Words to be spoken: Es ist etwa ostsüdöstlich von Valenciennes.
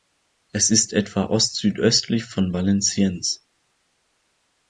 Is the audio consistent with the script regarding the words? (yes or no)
yes